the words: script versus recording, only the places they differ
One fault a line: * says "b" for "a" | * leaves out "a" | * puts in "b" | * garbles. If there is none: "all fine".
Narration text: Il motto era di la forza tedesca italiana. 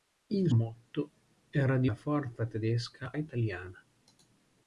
all fine